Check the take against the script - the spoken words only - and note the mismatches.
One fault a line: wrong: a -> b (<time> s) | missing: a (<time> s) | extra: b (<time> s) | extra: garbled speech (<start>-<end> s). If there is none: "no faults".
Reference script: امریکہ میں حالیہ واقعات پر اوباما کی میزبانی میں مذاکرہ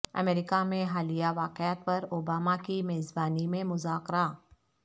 no faults